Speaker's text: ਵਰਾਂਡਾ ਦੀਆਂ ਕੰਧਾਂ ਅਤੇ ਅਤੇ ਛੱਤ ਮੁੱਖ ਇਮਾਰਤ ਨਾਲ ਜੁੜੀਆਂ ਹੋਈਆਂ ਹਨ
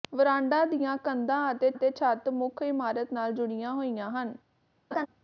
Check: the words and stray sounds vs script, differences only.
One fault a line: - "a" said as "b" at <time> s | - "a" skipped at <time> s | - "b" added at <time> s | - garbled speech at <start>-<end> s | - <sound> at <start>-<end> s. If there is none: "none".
- laugh at 4.9-5.1 s